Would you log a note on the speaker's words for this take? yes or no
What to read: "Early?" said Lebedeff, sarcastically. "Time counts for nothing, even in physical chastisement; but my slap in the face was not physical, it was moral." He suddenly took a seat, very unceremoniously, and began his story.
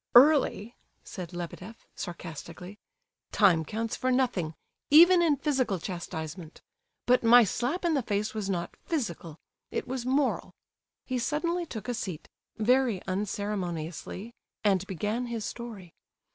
no